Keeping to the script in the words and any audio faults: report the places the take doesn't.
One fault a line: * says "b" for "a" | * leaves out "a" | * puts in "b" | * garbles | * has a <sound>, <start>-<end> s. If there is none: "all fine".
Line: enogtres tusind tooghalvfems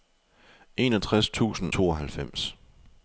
all fine